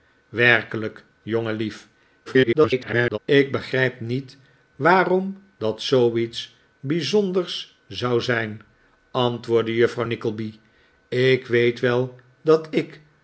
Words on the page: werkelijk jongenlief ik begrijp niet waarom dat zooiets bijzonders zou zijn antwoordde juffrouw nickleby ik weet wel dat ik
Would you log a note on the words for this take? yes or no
yes